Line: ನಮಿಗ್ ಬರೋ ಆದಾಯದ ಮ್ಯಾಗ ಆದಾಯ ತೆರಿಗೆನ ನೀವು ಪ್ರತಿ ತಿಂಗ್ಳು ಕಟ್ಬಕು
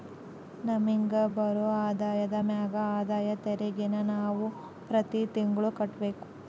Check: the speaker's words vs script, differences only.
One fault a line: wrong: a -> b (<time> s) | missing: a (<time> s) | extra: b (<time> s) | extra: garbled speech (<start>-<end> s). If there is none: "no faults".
wrong: ನೀವು -> ನಾವು (4.1 s)